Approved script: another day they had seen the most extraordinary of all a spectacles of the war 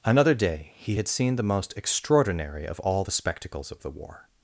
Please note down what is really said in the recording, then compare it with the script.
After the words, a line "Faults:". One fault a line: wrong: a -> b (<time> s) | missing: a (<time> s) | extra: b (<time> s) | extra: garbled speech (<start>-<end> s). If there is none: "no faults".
another day he had seen the most extraordinary of all the spectacles of the war
Faults:
wrong: they -> he (0.8 s)
wrong: a -> the (3.0 s)